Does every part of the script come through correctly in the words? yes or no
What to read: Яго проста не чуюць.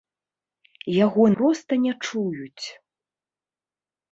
yes